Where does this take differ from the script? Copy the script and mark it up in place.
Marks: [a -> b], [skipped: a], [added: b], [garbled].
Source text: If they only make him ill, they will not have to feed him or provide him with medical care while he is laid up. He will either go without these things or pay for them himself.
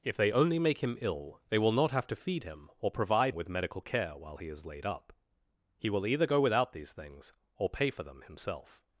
If they only make him ill, they will not have to feed him or provide [skipped: him] with medical care while he is laid up. He will either go without these things or pay for them himself.